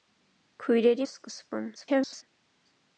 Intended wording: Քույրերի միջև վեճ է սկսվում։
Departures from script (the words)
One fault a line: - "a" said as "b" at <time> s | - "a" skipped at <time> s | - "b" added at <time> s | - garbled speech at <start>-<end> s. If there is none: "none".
- "միջև վեճ" skipped at 1.1 s
- garbled speech at 1.7-2.2 s